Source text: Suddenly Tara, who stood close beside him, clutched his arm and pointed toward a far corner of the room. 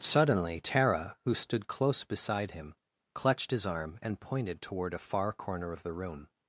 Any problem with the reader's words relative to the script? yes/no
no